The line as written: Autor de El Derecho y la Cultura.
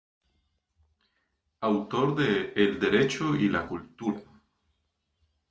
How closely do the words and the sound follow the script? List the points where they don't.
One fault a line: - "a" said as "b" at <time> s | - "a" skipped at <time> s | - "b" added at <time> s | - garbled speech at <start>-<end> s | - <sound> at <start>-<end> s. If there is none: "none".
none